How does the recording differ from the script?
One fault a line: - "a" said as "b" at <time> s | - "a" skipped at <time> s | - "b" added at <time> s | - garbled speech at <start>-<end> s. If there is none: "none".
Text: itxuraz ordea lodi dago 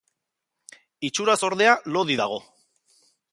none